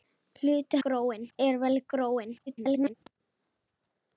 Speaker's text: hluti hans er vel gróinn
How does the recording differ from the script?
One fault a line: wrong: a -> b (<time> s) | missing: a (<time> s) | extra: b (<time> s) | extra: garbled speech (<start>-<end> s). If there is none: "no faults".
wrong: hans -> gróinn (0.9 s)
extra: garbled speech (2.5-2.9 s)